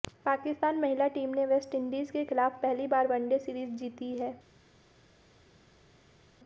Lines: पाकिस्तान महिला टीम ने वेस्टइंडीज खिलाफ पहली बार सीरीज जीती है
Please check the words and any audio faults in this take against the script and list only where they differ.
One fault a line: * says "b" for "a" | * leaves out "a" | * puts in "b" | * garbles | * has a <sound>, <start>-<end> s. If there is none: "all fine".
* puts in "के"
* puts in "वनडे"